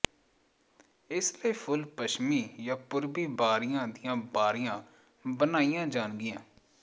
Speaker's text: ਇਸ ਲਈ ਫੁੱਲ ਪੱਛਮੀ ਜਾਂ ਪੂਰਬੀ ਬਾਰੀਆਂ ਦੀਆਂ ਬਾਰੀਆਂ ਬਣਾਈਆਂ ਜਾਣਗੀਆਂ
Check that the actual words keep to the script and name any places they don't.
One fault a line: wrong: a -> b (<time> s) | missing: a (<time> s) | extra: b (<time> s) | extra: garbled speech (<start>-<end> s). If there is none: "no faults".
no faults